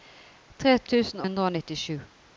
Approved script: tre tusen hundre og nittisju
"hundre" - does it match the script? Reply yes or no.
yes